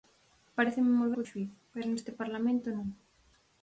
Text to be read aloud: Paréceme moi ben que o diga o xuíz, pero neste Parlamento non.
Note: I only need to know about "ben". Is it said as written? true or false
false